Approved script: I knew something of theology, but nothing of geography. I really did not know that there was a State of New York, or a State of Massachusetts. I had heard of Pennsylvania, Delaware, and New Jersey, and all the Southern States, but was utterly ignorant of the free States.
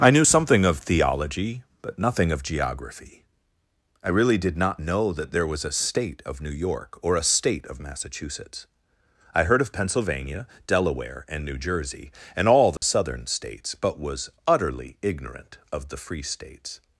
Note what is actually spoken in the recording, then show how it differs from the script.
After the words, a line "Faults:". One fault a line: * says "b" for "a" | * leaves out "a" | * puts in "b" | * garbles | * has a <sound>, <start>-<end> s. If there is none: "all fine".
I knew something of theology, but nothing of geography. I really did not know that there was a State of New York, or a State of Massachusetts. I heard of Pennsylvania, Delaware, and New Jersey, and all the Southern States, but was utterly ignorant of the free States.
Faults:
* leaves out "had"
* has a dropout, 12.8-12.8 s